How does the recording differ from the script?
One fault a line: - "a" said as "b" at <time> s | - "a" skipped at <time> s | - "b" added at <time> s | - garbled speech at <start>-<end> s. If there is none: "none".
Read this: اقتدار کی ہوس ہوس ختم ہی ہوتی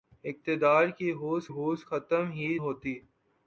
none